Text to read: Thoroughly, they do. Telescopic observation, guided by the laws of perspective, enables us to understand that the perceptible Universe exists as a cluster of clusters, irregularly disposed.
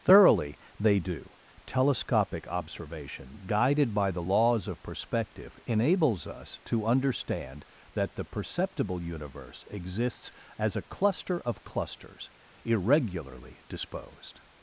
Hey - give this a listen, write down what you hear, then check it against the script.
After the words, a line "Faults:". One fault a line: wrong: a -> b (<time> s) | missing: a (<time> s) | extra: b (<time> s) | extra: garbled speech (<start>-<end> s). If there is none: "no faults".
Thoroughly, they do. Telescopic observation, guided by the laws of perspective, enables us to understand that the perceptible Universe exists as a cluster of clusters, irregularly disposed.
Faults:
no faults